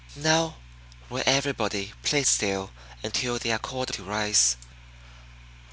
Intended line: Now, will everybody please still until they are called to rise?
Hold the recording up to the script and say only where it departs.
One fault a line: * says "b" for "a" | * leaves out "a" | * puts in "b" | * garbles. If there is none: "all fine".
all fine